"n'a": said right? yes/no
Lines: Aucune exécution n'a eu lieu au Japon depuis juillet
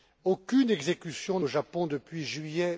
no